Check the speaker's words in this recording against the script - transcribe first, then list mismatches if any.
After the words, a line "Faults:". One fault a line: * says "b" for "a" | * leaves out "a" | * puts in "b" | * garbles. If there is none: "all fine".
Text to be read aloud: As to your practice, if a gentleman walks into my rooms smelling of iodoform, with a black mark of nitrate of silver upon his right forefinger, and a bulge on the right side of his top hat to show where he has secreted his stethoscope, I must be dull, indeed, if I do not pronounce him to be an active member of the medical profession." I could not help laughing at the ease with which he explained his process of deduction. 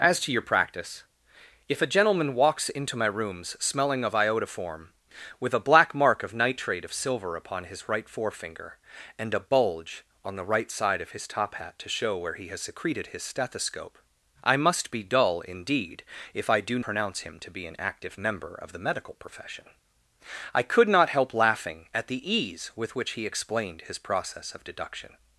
As to your practice, if a gentleman walks into my rooms smelling of iodoform, with a black mark of nitrate of silver upon his right forefinger, and a bulge on the right side of his top hat to show where he has secreted his stethoscope, I must be dull, indeed, if I do pronounce him to be an active member of the medical profession." I could not help laughing at the ease with which he explained his process of deduction.
Faults:
* leaves out "not"